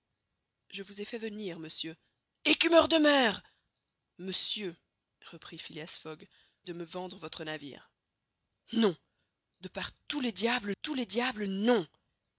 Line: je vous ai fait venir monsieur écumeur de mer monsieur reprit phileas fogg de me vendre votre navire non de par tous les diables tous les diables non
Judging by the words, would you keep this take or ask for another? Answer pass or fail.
pass